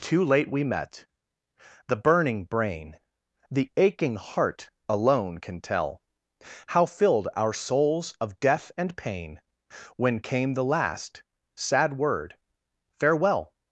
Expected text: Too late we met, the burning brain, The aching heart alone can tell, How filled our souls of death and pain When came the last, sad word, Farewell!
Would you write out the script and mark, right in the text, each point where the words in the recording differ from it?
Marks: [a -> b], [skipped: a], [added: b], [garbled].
Too late we met, the burning brain, The aching heart alone can tell, How filled our souls of death and pain When came the last, sad word, Farewell!